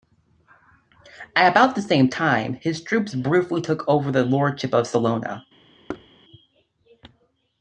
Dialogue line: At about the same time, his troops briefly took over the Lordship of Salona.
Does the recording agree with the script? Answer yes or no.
yes